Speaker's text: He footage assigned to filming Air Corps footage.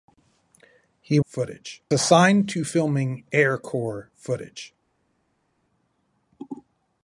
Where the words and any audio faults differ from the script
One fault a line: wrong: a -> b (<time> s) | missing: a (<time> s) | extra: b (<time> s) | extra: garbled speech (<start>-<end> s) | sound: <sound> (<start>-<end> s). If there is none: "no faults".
no faults